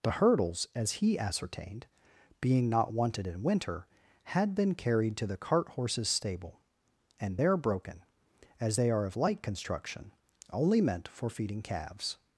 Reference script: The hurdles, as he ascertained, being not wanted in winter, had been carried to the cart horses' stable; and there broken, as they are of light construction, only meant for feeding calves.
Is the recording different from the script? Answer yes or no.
no